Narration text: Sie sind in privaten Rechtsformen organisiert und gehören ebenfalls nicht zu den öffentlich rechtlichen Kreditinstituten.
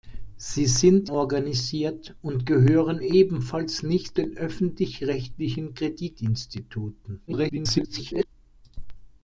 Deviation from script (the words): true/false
true